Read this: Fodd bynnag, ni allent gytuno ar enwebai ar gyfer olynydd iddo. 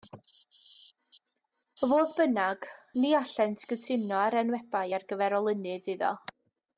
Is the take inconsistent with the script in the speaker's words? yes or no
no